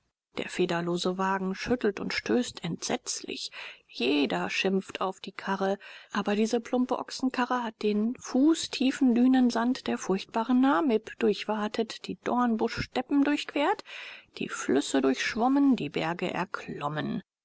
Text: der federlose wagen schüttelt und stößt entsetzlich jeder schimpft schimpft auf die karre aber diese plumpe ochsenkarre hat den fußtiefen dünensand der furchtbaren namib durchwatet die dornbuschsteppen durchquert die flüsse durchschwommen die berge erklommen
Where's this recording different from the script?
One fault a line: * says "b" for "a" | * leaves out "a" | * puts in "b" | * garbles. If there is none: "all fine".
* leaves out "schimpft"